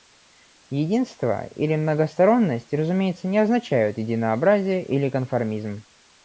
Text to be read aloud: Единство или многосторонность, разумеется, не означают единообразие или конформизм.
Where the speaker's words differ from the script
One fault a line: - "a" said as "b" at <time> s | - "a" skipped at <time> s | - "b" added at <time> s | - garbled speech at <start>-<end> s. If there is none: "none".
none